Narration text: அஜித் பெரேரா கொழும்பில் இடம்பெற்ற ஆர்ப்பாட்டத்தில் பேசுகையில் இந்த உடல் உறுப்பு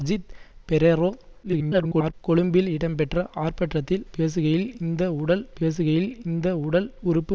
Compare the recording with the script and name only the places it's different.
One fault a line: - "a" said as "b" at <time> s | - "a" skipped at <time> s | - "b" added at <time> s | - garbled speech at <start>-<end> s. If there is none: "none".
- garbled speech at 1.4-2.1 s
- "பேசுகையில் இந்த உடல்" added at 5.6 s